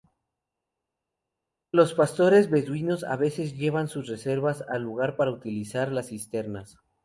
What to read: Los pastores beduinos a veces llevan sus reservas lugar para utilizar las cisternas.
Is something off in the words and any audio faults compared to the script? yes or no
yes